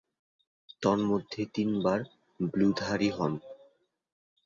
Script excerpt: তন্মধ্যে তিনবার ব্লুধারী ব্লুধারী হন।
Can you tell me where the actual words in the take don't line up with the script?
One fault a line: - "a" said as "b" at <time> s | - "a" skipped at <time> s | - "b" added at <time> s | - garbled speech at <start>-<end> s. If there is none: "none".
- "ব্লুধারী" skipped at 3.1 s